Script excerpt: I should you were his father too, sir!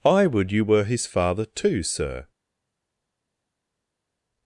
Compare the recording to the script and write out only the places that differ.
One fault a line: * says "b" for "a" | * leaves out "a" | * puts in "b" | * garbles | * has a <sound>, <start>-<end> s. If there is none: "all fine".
* says "would" for "should"